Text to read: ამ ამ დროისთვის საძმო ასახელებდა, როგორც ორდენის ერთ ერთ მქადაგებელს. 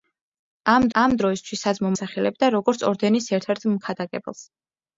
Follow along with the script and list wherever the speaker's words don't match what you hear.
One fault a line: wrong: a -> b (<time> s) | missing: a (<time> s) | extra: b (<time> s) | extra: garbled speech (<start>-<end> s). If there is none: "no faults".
no faults